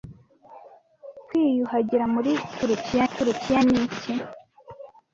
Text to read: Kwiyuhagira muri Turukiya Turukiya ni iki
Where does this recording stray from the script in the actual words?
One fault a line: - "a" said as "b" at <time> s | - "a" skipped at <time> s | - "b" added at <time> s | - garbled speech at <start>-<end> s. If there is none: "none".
none